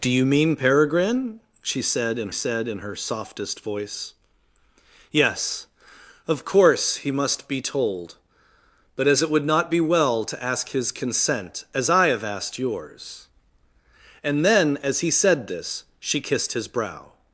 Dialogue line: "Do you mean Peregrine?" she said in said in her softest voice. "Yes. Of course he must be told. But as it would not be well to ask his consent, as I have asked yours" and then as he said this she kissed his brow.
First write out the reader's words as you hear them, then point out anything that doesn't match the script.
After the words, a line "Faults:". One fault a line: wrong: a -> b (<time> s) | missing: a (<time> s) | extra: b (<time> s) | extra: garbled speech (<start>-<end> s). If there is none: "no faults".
"Do you mean Peregrine?" she said in said in her softest voice. "Yes. Of course he must be told. But as it would not be well to ask his consent, as I have asked yours" and then as he said this she kissed his brow.
Faults:
no faults